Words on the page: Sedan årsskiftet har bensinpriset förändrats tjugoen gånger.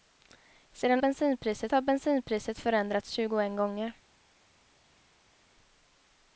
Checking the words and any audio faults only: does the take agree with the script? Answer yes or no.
no